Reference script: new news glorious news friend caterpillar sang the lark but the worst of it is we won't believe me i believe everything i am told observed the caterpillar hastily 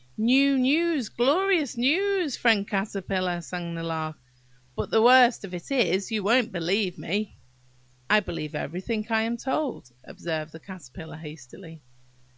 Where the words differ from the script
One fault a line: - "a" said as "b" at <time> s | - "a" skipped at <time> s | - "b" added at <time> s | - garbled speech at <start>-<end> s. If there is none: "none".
- "we" said as "you" at 6.1 s